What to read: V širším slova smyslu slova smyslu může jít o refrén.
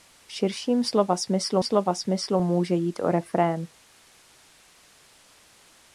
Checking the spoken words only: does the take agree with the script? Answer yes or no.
yes